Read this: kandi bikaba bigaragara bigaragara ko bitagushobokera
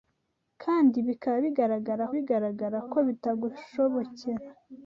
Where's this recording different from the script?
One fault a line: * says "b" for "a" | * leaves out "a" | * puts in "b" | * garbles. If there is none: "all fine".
all fine